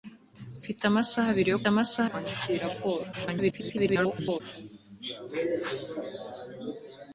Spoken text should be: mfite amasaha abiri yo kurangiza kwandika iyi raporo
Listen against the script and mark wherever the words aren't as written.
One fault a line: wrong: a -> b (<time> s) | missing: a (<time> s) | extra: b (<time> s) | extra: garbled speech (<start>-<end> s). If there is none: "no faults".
wrong: kurangiza -> amasaha (1.7 s)
extra: garbled speech (3.1-4.4 s)